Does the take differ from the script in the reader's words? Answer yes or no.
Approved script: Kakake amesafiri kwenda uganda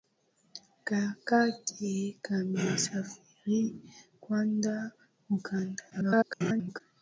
yes